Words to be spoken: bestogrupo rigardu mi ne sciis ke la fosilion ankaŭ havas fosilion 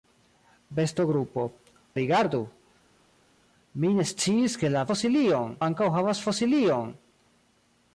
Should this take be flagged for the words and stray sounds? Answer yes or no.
no